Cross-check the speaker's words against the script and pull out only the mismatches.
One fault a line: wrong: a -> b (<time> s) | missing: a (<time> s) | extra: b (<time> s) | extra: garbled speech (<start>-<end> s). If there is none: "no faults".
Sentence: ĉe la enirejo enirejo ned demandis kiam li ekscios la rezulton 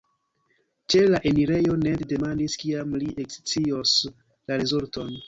missing: enirejo (1.8 s)